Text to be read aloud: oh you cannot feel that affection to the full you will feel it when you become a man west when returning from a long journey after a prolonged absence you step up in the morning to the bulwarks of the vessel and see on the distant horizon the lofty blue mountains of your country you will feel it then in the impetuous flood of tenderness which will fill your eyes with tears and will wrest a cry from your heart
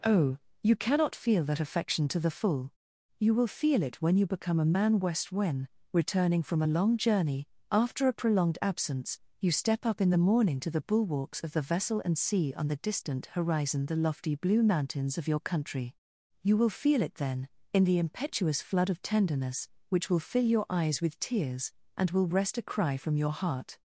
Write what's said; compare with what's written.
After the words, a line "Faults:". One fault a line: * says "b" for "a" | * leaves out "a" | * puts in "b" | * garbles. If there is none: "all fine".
oh you cannot feel that affection to the full you will feel it when you become a man west when returning from a long journey after a prolonged absence you step up in the morning to the bulwarks of the vessel and see on the distant horizon the lofty blue mountains of your country you will feel it then in the impetuous flood of tenderness which will fill your eyes with tears and will wrest a cry from your heart
Faults:
all fine